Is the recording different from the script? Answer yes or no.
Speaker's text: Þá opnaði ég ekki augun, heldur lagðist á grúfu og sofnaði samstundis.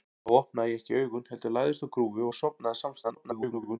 yes